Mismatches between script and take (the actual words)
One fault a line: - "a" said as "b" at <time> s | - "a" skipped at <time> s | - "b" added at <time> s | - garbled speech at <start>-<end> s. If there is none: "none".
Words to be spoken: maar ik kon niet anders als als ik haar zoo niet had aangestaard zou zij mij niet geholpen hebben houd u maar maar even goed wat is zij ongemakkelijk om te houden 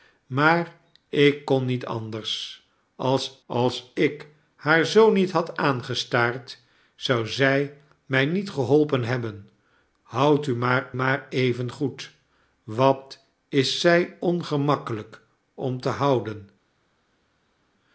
none